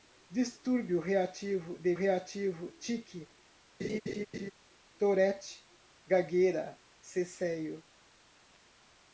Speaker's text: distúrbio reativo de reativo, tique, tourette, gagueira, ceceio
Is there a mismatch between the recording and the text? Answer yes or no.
no